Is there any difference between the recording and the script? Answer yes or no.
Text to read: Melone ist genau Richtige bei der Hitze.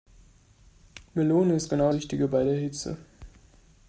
no